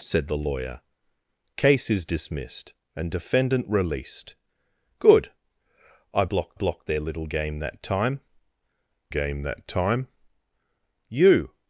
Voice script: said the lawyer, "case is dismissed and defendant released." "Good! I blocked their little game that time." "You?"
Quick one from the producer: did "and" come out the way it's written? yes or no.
yes